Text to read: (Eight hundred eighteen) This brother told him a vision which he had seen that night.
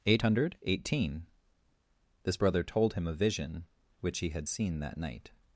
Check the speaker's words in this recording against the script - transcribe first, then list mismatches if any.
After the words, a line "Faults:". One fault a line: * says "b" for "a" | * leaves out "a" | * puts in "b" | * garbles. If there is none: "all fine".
(Eight hundred eighteen) This brother told him a vision which he had seen that night.
Faults:
all fine